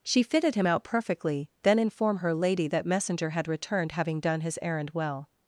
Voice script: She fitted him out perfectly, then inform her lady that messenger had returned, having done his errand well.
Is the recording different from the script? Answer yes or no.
no